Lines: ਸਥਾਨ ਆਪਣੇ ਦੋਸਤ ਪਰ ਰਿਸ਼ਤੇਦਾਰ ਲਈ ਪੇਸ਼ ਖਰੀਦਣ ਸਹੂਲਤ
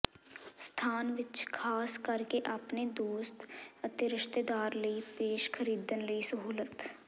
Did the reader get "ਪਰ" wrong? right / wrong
wrong